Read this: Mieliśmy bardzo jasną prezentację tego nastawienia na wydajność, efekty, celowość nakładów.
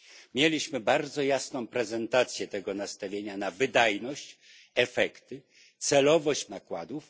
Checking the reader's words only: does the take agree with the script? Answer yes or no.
yes